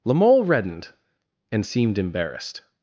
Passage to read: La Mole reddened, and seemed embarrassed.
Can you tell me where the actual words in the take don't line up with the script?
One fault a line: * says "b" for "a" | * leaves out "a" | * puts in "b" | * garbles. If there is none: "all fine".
all fine